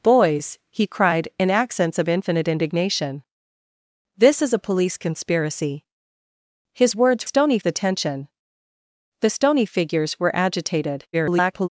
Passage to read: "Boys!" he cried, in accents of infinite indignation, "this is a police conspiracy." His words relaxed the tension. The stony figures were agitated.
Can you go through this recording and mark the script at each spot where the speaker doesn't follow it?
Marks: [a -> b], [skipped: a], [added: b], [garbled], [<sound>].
"Boys!" he cried, in accents of infinite indignation, "this is a police conspiracy." His words [relaxed -> stony] the tension. The stony figures were agitated. [garbled]